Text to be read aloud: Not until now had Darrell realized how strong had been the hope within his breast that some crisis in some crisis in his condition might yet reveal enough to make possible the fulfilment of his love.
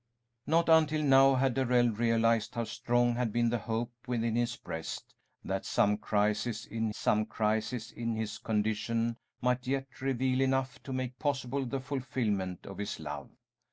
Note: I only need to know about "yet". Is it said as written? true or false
true